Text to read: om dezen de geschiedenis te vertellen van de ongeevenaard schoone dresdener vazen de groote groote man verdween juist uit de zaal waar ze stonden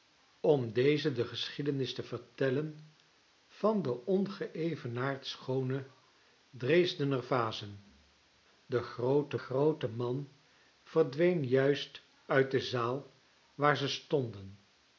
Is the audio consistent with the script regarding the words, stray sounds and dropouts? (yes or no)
yes